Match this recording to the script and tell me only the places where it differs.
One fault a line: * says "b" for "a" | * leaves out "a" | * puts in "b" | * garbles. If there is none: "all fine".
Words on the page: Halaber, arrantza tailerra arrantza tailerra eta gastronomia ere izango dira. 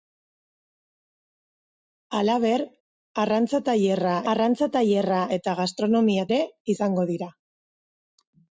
all fine